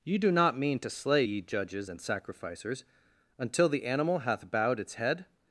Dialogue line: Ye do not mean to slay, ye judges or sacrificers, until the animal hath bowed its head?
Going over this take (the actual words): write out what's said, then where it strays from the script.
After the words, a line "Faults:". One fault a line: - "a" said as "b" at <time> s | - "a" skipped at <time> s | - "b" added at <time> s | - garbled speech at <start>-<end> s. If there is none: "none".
Ye do not mean to slay, ye judges and sacrificers, until the animal hath bowed its head?
Faults:
- "or" said as "and" at 1.9 s